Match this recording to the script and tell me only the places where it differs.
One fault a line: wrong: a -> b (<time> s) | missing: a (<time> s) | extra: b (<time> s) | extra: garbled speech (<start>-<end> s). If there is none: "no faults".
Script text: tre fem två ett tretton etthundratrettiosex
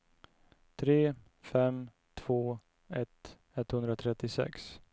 missing: tretton (3.4 s)